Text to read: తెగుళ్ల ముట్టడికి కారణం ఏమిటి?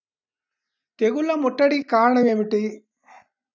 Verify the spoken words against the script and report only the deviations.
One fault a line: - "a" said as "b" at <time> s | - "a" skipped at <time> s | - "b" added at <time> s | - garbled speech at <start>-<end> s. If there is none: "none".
none